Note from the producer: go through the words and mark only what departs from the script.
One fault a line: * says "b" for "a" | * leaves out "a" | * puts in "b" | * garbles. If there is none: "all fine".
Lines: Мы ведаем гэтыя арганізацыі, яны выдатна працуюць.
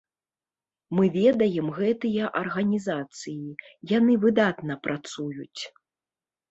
all fine